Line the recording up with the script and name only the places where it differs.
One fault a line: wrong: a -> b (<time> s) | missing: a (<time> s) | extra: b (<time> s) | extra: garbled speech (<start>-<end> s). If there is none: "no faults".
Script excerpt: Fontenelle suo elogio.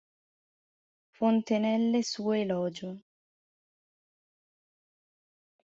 no faults